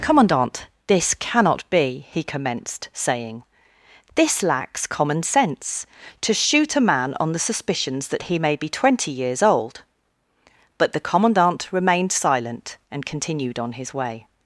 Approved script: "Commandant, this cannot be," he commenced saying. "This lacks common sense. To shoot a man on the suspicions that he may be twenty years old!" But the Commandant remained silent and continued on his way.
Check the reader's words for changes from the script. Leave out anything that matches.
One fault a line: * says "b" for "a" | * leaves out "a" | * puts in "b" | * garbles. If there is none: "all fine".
all fine